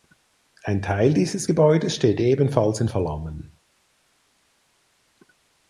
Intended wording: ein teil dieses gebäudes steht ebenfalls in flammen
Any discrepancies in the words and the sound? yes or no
no